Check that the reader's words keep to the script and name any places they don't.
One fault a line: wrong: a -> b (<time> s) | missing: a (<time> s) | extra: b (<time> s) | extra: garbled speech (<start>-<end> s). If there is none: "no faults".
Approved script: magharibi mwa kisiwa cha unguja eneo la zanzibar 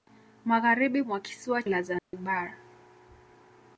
missing: cha unguja eneo (1.6 s)